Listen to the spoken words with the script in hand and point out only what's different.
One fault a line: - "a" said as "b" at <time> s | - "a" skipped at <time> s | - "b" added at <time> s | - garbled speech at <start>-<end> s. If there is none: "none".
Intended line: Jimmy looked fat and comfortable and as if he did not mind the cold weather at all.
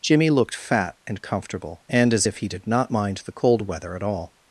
none